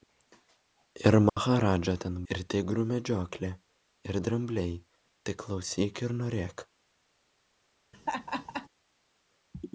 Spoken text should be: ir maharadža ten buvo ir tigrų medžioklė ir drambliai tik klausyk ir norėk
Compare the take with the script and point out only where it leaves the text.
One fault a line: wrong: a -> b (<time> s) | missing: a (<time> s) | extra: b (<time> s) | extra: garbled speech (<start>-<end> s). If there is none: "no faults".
missing: buvo (2.2 s)